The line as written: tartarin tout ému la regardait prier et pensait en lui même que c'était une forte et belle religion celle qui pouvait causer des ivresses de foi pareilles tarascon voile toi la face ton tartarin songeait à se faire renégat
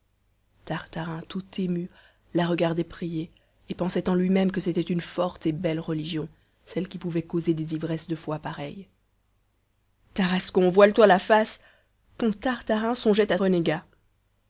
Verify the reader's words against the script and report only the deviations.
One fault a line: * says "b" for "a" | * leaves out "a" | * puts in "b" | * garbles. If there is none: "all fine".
* leaves out "se faire"